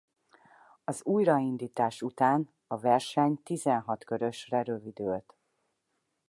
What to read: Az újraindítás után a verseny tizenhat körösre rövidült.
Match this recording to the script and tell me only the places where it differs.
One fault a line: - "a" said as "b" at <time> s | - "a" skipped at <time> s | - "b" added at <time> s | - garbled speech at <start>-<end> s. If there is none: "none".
none